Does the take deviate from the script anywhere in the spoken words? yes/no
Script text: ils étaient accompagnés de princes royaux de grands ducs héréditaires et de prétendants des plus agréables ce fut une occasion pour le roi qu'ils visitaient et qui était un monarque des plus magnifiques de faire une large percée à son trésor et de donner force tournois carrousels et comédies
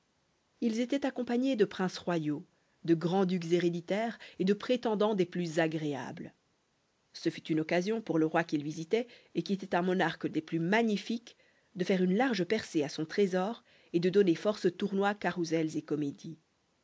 no